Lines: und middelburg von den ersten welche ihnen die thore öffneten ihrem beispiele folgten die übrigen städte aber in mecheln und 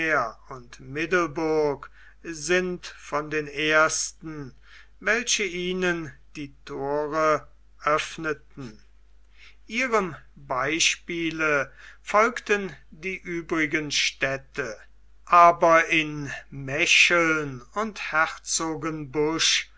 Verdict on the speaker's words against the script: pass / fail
fail